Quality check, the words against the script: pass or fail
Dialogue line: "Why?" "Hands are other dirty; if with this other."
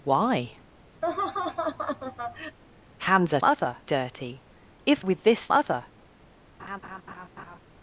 pass